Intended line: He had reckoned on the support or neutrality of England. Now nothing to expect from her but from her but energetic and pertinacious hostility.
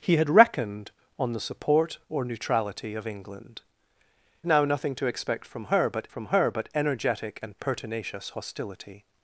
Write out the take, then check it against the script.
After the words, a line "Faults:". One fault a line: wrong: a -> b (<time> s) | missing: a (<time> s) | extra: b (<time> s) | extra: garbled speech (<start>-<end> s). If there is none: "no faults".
He had reckoned on the support or neutrality of England. Now nothing to expect from her but from her but energetic and pertinacious hostility.
Faults:
no faults